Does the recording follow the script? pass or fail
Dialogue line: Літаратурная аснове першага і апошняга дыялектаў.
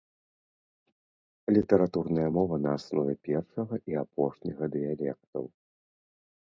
fail